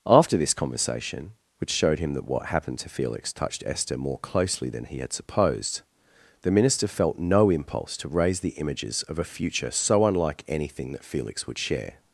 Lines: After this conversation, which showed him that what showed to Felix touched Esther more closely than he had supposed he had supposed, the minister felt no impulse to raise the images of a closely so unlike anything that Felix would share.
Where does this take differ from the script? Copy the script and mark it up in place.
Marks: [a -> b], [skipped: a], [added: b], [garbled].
After this conversation, which showed him that what [showed -> happened] to Felix touched Esther more closely than he had supposed [skipped: he had supposed,] the minister felt no impulse to raise the images of a [closely -> future] so unlike anything that Felix would share.